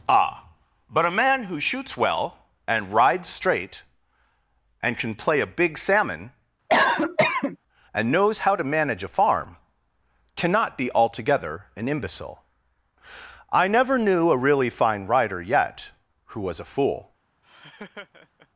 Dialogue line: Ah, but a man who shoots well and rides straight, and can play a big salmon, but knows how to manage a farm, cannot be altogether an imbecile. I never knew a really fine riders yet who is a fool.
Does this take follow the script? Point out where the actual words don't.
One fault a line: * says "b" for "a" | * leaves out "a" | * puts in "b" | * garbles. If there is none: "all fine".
* says "and" for "but"
* says "rider" for "riders"
* says "was" for "is"